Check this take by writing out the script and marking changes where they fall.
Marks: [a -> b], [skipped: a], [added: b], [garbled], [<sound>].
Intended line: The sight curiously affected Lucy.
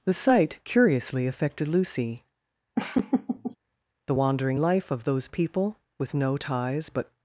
The sight curiously affected Lucy. [laugh] [added: The wandering life of those people with no ties but]